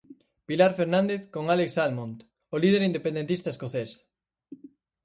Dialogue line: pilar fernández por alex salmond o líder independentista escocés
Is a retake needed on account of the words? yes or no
yes